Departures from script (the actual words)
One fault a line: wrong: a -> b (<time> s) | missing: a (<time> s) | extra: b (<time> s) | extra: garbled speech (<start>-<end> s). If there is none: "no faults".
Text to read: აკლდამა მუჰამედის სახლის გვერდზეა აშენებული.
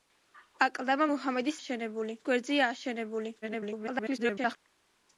wrong: სახლის -> აშენებული (1.6 s)
extra: garbled speech (3.4-4.6 s)